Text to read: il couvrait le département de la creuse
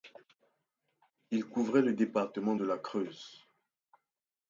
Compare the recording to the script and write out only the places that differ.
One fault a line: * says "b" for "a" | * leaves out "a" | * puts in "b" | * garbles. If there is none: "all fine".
all fine